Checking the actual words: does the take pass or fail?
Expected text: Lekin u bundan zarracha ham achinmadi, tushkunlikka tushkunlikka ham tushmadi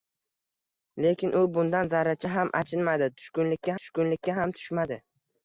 pass